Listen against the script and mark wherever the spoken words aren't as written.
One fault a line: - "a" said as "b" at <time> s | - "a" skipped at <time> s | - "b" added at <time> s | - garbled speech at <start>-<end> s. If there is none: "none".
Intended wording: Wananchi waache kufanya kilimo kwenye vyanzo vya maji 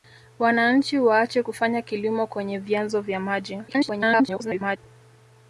- garbled speech at 3.7-4.8 s